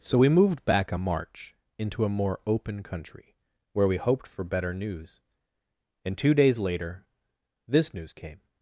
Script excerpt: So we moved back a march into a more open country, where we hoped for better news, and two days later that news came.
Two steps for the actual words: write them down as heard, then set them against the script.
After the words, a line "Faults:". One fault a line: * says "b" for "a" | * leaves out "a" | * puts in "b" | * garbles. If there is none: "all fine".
So we moved back a march into a more open country, where we hoped for better news, and two days later this news came.
Faults:
* says "this" for "that"